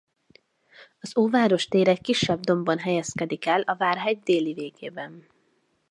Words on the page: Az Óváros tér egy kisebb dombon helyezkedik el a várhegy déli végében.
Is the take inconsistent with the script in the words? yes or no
no